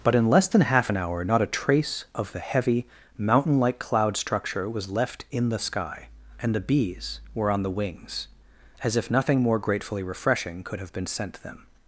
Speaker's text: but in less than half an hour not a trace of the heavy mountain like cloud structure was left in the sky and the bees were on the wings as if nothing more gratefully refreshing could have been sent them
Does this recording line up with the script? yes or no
yes